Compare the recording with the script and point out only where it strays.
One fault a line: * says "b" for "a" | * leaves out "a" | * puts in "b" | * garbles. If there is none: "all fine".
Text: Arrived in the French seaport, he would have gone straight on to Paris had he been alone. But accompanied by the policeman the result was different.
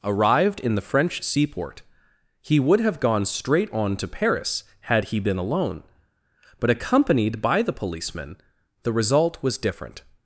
all fine